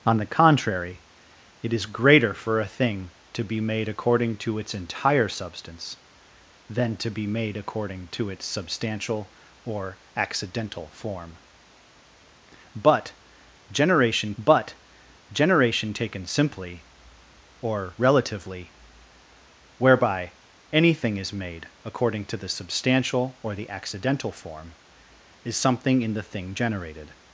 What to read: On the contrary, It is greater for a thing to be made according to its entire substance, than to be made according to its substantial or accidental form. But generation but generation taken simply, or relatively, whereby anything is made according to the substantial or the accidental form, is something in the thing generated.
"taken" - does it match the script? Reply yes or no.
yes